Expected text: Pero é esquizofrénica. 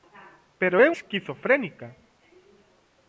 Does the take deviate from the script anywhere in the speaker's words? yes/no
no